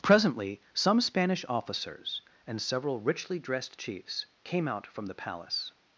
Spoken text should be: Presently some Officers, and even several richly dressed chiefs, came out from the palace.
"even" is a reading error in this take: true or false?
true